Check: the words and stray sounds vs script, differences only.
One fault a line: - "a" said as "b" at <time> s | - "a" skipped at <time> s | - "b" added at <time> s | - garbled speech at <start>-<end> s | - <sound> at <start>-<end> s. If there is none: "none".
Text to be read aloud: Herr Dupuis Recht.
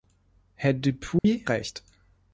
- dropout at 1.2-1.2 s